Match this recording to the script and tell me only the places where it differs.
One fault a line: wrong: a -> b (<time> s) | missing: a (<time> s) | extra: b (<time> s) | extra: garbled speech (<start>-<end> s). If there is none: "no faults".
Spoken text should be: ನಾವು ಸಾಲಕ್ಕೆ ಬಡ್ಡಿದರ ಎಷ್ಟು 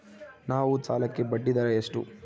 no faults